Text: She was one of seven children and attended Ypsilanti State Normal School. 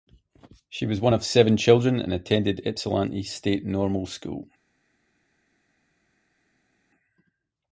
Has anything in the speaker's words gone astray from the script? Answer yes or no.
no